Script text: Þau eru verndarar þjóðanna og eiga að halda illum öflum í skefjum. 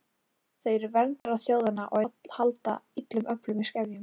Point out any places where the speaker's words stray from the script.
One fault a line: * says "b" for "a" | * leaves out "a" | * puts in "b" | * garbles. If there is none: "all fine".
* leaves out "eiga"